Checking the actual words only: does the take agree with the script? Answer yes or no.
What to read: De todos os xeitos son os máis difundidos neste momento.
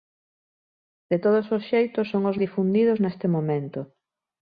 no